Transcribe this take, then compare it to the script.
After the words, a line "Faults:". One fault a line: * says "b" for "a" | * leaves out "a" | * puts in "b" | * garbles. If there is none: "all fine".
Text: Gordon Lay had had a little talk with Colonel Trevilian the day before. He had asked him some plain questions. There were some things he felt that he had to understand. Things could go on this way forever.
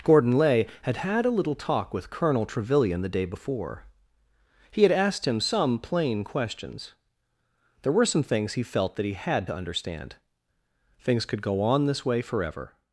Gordon Lay had had a little talk with Colonel Trevilian the day before. He had asked him some plain questions. There were some things he felt that he had to understand. Things could go on this way forever.
Faults:
all fine